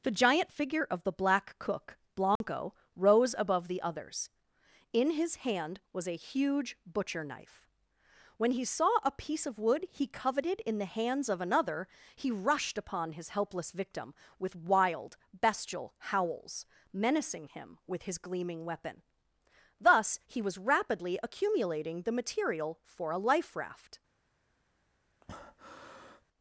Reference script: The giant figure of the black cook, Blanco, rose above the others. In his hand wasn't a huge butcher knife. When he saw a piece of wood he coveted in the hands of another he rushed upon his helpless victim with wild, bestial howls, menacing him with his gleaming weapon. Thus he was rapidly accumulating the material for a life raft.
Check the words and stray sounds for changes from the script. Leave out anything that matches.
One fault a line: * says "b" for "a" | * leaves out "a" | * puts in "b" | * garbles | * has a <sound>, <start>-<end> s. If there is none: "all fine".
* has a dropout, 2.4-2.4 s
* says "was" for "wasn't"
* has a breath, 25.2-26.2 s